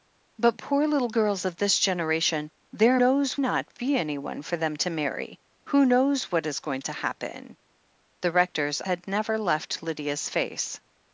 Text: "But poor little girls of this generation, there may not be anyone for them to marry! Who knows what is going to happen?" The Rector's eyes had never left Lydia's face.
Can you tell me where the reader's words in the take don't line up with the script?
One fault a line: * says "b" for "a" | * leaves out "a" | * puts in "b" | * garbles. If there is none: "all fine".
* says "knows" for "may"
* leaves out "eyes"